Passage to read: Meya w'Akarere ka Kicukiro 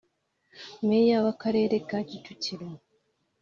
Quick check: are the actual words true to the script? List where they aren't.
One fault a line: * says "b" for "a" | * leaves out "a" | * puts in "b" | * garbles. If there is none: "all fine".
all fine